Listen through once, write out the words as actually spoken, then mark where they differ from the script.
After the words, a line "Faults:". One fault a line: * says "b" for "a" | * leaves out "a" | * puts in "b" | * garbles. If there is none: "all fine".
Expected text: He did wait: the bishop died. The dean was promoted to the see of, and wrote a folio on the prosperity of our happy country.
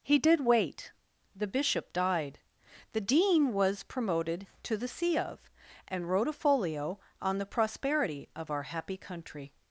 He did wait: the bishop died. The dean was promoted to the see of, and wrote a folio on the prosperity of our happy country.
Faults:
all fine